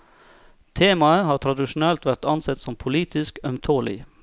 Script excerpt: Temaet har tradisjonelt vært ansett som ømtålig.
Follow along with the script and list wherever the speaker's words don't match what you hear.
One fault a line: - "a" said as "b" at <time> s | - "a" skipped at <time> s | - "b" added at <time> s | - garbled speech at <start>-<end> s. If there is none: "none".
- "politisk" added at 2.8 s